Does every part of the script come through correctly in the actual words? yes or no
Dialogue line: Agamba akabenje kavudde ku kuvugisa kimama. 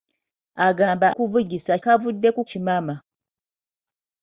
no